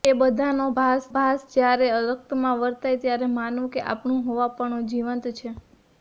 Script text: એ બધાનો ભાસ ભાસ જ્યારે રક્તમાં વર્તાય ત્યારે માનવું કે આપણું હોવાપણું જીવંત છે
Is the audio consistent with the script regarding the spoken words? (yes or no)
yes